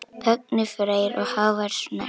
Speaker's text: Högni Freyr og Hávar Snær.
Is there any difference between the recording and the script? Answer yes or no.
no